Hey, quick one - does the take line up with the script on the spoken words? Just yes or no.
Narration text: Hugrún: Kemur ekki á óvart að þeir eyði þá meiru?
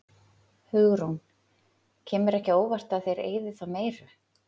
yes